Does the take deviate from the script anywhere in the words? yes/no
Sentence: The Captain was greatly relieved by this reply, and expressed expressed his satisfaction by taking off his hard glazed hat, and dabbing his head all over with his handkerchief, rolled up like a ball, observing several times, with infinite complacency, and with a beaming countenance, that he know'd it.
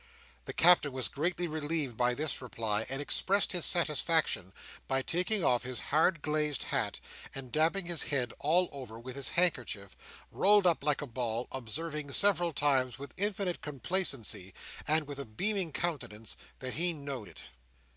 yes